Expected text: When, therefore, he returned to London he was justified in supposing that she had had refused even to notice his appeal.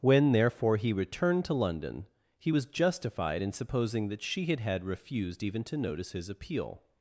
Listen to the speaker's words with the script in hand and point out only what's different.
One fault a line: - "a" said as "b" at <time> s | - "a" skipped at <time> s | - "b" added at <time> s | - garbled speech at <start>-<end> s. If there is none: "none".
none